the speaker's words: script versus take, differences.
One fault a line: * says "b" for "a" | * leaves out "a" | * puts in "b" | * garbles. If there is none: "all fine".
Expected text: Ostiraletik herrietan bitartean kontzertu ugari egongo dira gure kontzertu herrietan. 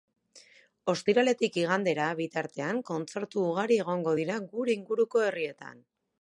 * says "igandera" for "herrietan"
* says "inguruko" for "kontzertu"